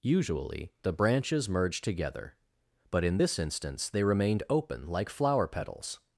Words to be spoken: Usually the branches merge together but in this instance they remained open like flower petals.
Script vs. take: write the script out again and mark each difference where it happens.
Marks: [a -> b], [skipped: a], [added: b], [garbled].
Usually the branches merge together but in this instance they remained open like flower petals.